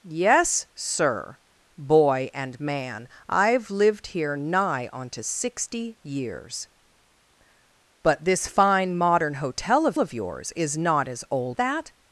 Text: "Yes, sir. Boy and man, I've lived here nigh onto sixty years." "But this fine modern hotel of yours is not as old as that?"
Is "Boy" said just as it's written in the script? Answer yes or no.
yes